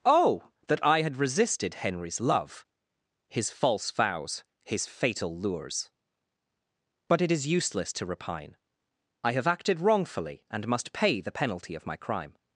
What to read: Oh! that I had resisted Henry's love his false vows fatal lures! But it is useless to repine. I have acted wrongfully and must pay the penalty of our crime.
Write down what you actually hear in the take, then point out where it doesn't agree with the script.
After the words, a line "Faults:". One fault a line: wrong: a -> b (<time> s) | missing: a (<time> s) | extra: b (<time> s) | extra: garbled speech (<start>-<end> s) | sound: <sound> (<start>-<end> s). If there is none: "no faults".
Oh! that I had resisted Henry's love his false vows his fatal lures! But it is useless to repine. I have acted wrongfully and must pay the penalty of my crime.
Faults:
extra: his (4.6 s)
wrong: our -> my (11.8 s)